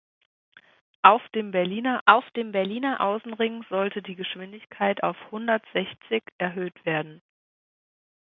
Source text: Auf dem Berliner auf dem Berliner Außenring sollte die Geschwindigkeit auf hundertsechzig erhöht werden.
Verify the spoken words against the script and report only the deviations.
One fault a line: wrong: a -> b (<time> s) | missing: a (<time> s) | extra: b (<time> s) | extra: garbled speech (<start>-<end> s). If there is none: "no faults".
no faults